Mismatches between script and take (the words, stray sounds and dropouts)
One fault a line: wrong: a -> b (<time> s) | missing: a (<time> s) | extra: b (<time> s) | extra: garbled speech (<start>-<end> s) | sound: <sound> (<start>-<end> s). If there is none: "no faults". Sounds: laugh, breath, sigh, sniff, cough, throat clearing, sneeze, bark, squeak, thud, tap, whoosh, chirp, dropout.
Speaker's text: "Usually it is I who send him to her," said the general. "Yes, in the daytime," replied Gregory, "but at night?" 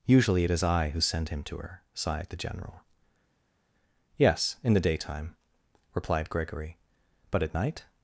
wrong: said -> sighed (1.9 s)